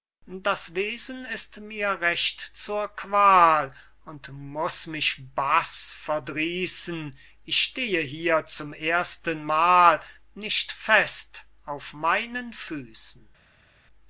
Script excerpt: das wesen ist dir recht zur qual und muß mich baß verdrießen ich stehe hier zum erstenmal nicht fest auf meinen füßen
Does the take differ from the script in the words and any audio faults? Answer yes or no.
yes